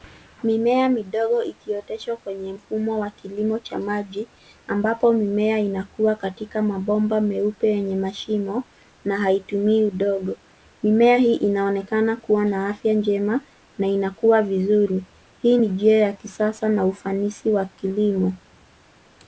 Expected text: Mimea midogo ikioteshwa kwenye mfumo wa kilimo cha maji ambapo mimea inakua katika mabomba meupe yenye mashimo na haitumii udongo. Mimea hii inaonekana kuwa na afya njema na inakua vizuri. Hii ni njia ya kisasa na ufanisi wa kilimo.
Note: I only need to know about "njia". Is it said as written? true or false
true